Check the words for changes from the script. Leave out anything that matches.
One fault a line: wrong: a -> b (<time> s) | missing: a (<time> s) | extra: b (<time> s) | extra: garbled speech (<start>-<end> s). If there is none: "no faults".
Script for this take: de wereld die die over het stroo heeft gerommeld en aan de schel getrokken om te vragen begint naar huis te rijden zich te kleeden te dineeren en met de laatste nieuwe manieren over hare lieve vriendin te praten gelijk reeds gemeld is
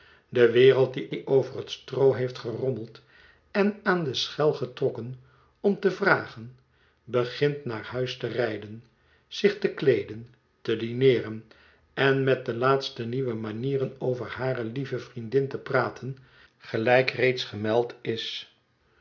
no faults